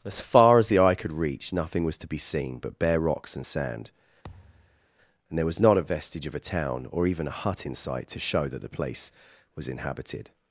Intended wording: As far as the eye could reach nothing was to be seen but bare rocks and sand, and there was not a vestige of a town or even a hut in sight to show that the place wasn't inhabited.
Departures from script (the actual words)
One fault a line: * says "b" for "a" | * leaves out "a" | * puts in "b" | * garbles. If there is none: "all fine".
* says "was" for "wasn't"